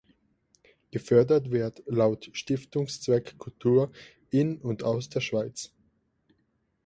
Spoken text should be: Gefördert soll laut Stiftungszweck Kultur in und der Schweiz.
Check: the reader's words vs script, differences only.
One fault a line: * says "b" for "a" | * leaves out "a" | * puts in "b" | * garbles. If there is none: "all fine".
* says "wird" for "soll"
* puts in "aus"